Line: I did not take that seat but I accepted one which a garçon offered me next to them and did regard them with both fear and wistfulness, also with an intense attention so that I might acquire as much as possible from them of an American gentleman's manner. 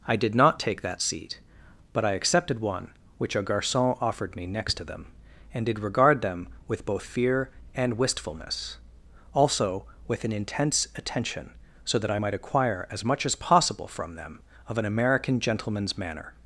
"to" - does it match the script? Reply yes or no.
yes